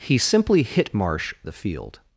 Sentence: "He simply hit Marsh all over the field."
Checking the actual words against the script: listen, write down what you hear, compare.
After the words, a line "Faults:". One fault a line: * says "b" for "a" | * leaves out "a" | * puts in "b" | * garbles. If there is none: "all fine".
"He simply hit Marsh the field."
Faults:
* leaves out "all over"